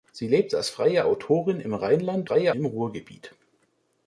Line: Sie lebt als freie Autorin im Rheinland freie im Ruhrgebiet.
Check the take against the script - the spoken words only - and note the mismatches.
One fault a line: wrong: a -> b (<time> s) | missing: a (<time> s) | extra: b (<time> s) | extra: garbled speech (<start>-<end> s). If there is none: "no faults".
no faults